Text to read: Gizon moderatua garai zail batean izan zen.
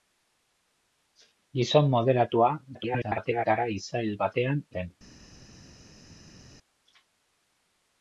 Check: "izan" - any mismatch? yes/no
yes